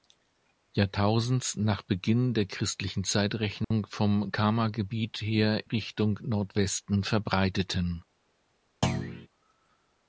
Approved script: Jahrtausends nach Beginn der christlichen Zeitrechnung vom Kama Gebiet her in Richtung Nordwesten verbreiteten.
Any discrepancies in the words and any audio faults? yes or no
yes